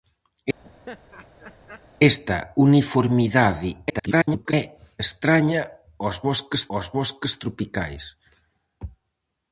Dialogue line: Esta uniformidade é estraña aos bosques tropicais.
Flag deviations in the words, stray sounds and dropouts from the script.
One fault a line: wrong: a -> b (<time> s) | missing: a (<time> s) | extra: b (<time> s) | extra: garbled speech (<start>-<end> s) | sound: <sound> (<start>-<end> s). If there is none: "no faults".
sound: laugh (0.6-1.9 s)
extra: garbled speech (3.9-4.5 s)
extra: aos bosques (6.7 s)